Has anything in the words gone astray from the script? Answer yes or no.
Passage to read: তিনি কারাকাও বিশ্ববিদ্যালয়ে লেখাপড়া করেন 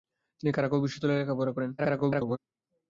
yes